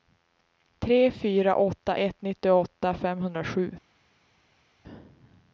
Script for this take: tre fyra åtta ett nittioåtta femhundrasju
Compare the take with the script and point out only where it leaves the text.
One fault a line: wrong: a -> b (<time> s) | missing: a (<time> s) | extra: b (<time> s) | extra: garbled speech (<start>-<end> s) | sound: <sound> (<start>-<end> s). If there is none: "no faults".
no faults